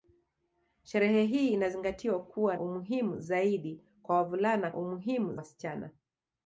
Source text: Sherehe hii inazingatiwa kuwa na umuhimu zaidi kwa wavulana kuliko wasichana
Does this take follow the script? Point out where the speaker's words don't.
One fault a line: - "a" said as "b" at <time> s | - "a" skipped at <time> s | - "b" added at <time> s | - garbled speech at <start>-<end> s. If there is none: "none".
- "na" skipped at 2.6 s
- "kuliko" said as "umuhimu" at 4.8 s